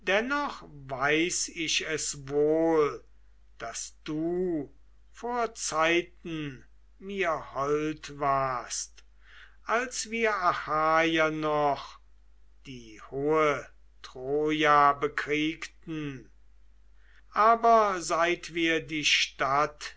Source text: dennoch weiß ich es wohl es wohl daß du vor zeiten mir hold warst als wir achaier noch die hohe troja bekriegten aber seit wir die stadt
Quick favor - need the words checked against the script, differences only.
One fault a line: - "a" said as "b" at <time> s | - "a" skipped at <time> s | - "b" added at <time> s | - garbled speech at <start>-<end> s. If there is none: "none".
- "es wohl" skipped at 3.0 s